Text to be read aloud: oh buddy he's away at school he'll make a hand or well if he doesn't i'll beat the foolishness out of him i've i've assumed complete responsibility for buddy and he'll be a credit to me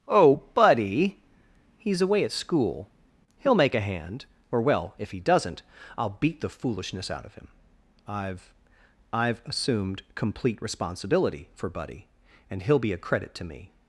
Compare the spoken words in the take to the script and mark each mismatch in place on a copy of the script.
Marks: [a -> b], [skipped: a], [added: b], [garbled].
oh buddy he's away at school he'll make a hand or well if he doesn't i'll beat the foolishness out of him i've i've assumed complete responsibility for buddy and he'll be a credit to me